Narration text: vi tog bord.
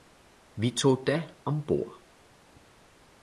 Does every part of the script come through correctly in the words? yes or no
no